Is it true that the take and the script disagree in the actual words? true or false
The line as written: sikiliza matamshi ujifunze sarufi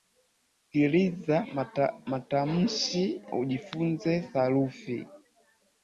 false